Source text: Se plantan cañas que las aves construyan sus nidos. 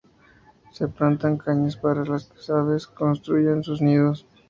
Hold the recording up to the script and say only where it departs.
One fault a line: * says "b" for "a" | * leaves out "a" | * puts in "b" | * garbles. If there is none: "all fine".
* puts in "para"